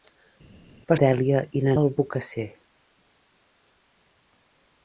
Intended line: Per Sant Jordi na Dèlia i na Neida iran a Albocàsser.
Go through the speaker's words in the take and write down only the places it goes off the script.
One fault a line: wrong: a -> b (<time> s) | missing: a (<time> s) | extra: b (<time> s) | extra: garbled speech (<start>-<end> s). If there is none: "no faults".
missing: Sant Jordi na (1.0 s)
missing: Neida iran a (1.7 s)